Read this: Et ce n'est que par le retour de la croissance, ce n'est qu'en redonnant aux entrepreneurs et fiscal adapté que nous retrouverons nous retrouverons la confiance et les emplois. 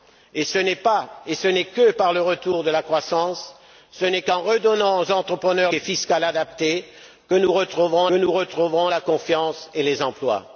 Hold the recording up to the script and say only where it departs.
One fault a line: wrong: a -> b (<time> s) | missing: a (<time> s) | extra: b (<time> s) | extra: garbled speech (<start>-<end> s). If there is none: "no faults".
no faults